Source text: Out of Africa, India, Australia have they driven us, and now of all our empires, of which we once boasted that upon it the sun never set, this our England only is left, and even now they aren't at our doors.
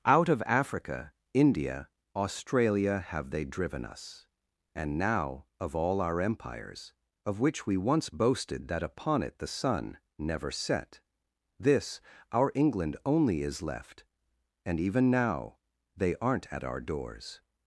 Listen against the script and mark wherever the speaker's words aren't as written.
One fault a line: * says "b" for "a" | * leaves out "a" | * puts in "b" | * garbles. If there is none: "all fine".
all fine